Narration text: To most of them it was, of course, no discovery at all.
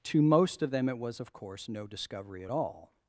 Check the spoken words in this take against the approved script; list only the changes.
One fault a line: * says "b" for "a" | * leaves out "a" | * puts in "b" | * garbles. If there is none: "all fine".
all fine